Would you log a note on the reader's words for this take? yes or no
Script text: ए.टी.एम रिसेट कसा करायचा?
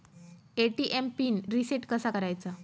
yes